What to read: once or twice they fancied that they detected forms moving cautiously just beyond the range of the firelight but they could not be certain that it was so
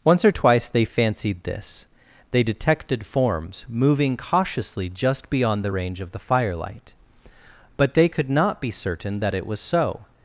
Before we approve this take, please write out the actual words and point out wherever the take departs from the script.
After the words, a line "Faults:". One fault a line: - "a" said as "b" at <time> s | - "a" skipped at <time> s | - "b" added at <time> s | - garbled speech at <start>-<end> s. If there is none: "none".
once or twice they fancied this they detected forms moving cautiously just beyond the range of the firelight but they could not be certain that it was so
Faults:
- "that" said as "this" at 1.4 s